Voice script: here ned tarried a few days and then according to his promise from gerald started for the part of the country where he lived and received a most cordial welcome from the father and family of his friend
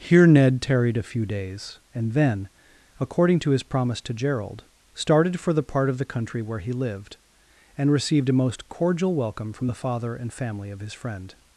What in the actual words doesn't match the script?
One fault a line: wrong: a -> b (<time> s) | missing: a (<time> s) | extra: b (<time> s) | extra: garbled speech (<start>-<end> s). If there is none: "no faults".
wrong: from -> to (4.0 s)